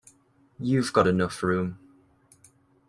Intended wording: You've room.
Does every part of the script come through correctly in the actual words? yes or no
no